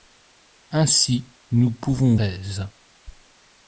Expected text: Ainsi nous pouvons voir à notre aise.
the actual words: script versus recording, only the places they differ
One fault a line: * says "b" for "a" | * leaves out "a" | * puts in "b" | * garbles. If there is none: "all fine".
* leaves out "voir à notre"